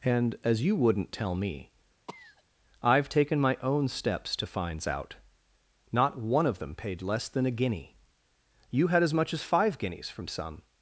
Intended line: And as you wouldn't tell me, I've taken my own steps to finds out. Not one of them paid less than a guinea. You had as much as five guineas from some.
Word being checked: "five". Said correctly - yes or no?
yes